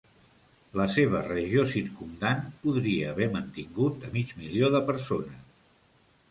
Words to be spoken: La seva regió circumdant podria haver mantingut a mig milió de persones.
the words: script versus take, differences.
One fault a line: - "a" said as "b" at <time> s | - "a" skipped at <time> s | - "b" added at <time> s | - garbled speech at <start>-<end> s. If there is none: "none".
none